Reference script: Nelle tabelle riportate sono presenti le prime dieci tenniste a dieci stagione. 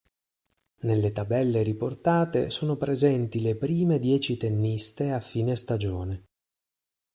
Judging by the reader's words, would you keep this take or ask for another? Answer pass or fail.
fail